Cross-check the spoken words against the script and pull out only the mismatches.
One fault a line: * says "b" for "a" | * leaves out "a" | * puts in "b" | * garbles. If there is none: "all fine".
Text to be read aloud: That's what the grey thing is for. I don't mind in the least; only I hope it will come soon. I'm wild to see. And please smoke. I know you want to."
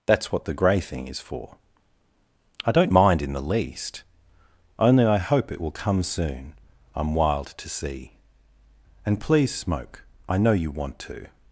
all fine